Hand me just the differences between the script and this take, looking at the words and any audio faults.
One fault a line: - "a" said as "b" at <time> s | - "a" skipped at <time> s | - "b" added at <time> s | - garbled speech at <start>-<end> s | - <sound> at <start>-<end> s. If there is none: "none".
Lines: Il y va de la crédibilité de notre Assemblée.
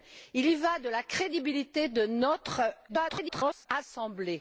- garbled speech at 2.9-3.7 s